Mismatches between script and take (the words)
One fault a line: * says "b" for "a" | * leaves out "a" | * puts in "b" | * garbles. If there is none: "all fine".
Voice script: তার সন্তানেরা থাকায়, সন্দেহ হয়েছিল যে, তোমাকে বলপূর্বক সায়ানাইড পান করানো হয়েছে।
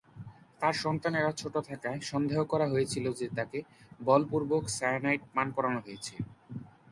* puts in "ছোট"
* puts in "করা"
* says "তাকে" for "তোমাকে"